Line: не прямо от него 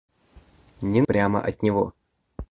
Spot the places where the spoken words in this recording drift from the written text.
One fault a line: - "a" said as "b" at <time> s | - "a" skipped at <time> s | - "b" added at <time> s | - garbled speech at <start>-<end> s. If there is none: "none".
none